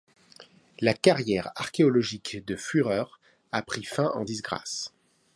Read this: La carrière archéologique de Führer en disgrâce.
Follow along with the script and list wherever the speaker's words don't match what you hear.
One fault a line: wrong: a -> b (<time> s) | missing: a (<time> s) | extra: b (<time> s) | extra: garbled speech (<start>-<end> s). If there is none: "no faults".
extra: a pris fin (3.5 s)